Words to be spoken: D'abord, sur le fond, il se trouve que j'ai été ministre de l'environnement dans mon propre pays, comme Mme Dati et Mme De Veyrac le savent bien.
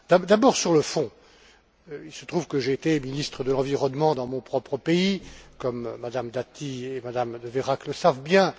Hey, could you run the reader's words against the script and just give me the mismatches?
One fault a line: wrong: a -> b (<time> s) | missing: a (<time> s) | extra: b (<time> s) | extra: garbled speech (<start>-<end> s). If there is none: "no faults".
no faults